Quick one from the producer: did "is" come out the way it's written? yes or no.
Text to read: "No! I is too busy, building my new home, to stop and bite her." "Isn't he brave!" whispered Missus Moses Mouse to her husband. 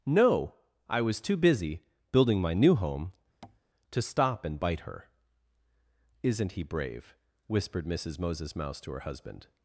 no